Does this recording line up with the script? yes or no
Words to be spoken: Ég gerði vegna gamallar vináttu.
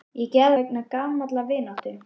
yes